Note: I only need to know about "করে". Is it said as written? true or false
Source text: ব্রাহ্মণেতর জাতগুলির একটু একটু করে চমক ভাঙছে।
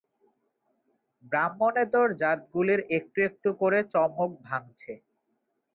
true